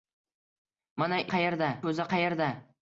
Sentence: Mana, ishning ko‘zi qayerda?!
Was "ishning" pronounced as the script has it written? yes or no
no